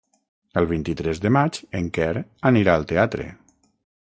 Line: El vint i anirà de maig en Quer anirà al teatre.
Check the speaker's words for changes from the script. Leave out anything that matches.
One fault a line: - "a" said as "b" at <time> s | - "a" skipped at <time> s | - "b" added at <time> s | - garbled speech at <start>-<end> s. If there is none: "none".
- "anirà" said as "tres" at 1.0 s